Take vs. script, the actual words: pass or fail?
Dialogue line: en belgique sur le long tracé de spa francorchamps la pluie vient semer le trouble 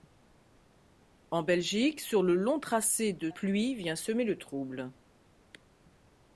fail